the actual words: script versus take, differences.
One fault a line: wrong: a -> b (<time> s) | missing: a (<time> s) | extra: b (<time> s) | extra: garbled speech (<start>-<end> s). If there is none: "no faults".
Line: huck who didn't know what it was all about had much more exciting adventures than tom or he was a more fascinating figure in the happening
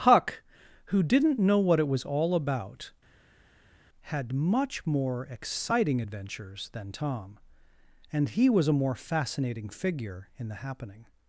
wrong: or -> and (8.1 s)